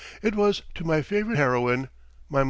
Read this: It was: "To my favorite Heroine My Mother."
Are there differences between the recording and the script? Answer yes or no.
no